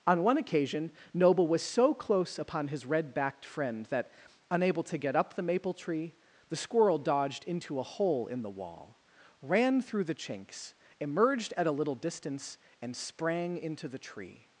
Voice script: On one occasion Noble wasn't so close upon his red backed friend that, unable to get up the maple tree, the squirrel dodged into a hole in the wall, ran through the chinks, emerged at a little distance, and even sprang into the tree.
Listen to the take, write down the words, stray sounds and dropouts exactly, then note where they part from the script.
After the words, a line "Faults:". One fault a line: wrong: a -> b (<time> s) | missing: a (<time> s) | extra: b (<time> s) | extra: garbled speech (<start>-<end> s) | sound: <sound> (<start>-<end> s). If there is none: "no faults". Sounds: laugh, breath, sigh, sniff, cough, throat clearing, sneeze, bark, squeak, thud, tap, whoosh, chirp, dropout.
On one occasion Noble was so close upon his red backed friend that, unable to get up the maple tree, the squirrel dodged into a hole in the wall, ran through the chinks, emerged at a little distance, and sprang into the tree.
Faults:
wrong: wasn't -> was (1.5 s)
missing: even (12.9 s)